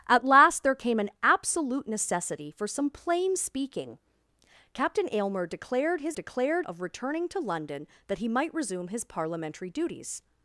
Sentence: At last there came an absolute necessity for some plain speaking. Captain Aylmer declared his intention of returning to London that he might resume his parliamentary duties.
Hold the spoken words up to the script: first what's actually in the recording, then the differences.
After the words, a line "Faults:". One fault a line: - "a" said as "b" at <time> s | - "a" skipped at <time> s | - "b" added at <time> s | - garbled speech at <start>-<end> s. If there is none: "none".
At last there came an absolute necessity for some plain speaking. Captain Aylmer declared his declared of returning to London that he might resume his parliamentary duties.
Faults:
- "intention" said as "declared" at 6.1 s